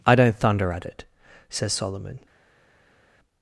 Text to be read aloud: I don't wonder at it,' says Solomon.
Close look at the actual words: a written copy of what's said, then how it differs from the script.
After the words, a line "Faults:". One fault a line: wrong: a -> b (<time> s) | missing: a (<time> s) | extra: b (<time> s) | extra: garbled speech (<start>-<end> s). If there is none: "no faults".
I don't thunder at it,' says Solomon.
Faults:
wrong: wonder -> thunder (0.3 s)